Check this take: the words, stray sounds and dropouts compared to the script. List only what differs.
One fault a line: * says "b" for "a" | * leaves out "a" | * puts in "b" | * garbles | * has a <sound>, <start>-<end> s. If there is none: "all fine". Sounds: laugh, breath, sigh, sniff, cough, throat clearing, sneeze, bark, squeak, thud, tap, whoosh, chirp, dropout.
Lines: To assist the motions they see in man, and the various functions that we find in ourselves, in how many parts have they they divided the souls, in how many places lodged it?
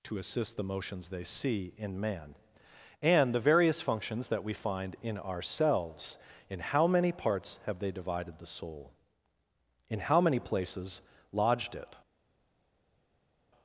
* leaves out "they"
* says "soul" for "souls"